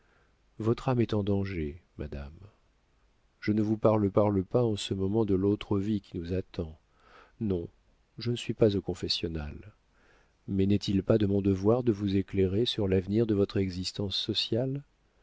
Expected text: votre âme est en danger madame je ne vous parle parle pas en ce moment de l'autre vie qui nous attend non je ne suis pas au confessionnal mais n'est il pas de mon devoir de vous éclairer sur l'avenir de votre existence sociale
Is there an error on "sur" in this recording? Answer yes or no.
no